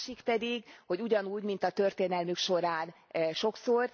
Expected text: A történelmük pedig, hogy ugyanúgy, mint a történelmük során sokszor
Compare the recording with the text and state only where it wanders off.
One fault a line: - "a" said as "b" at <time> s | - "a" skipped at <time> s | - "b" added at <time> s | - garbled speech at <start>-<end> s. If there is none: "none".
- "történelmük" said as "másik" at 0.1 s